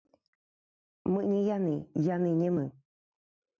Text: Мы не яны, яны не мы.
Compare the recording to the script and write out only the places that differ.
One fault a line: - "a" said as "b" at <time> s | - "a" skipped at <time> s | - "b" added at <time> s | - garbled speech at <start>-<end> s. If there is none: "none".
none